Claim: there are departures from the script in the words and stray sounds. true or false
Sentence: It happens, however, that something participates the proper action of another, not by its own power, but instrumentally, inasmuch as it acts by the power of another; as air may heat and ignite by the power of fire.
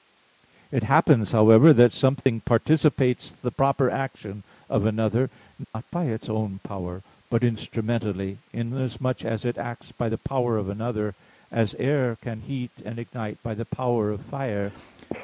true